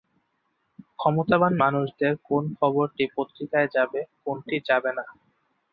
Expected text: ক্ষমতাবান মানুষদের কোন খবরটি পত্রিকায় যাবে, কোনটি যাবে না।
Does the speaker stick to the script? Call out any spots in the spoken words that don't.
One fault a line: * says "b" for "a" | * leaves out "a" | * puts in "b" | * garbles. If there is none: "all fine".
all fine